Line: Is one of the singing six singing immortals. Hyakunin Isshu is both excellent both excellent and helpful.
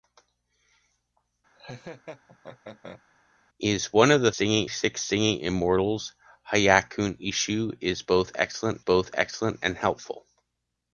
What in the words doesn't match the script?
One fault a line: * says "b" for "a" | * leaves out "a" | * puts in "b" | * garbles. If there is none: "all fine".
all fine